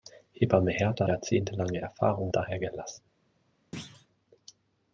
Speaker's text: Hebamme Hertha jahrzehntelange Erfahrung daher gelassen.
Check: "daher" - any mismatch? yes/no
no